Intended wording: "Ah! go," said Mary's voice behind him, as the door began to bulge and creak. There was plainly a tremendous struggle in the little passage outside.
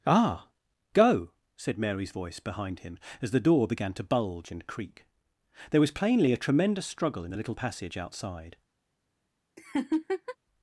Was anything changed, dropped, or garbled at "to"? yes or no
no